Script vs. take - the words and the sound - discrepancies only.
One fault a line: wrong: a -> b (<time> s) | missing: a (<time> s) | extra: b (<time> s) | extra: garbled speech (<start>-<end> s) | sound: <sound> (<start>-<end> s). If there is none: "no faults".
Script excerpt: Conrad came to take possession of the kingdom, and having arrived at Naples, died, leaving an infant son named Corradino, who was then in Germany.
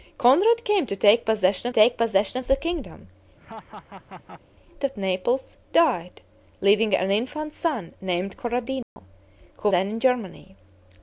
extra: take possession (1.7 s)
missing: and having arrived (3.1 s)
sound: laugh (3.4-4.4 s)
sound: dropout (8.8-9.0 s)
missing: was (9.7 s)